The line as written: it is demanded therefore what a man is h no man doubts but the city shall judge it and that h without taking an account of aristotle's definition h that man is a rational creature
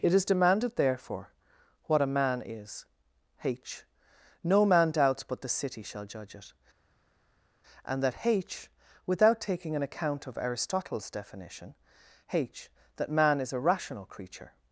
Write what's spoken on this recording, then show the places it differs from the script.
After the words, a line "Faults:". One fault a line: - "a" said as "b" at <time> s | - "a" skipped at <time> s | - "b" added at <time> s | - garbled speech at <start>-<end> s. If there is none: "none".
it is demanded therefore what a man is h no man doubts but the city shall judge it and that h without taking an account of aristotle's definition h that man is a rational creature
Faults:
none